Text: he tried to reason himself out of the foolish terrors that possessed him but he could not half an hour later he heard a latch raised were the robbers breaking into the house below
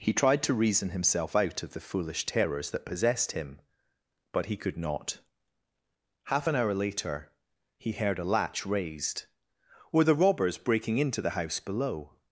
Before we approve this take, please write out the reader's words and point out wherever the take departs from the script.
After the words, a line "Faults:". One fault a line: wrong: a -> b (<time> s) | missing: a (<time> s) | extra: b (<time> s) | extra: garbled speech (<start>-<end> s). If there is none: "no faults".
he tried to reason himself out of the foolish terrors that possessed him but he could not half an hour later he heard a latch raised were the robbers breaking into the house below
Faults:
no faults